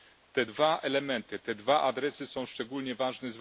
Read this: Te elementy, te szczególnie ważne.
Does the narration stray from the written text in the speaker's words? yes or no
yes